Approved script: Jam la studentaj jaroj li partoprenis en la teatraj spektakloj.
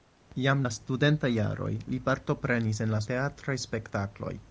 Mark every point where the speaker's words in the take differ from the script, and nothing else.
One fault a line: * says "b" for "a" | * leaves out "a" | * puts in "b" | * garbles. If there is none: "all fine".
all fine